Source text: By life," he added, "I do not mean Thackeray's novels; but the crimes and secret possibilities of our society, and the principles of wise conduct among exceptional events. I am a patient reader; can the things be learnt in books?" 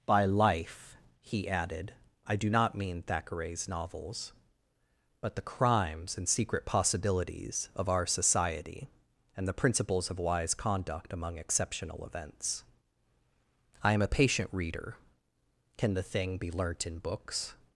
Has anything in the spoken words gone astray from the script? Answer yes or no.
yes